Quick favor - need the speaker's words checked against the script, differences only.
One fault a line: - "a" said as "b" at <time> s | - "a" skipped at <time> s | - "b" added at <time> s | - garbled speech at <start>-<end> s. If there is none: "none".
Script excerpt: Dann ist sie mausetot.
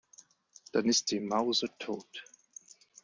none